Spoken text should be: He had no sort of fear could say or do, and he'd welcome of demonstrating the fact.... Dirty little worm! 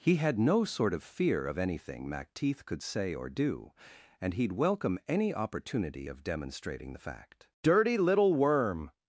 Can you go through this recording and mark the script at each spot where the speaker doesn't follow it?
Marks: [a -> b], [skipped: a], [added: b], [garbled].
He had no sort of fear [added: of anything Macteith] could say or do, and he'd welcome [added: any opportunity] of demonstrating the fact.... Dirty little worm!